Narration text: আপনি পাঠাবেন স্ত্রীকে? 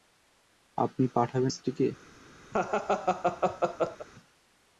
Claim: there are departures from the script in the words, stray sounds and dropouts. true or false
true